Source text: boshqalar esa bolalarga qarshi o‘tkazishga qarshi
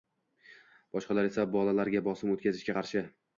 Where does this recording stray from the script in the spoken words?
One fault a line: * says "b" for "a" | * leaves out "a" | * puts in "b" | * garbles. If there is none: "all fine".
* says "bosim" for "qarshi"